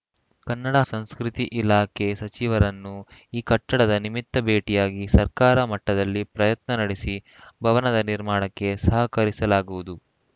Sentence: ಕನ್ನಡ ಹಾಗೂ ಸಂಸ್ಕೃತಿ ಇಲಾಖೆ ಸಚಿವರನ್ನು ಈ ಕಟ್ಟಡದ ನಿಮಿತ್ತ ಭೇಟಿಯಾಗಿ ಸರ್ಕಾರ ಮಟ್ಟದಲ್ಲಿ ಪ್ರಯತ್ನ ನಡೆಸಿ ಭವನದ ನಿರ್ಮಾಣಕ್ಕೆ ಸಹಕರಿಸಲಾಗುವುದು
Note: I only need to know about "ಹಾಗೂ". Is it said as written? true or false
false